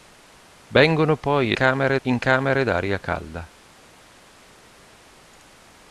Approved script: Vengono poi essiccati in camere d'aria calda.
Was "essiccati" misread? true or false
true